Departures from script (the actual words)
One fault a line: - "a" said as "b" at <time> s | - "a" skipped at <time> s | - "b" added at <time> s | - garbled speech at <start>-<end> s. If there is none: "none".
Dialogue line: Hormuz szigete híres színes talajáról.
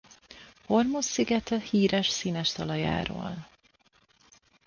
none